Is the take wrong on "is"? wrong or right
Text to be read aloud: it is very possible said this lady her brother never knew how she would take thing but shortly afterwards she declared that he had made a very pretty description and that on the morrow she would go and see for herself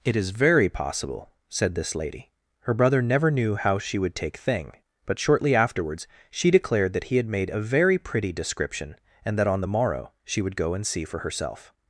right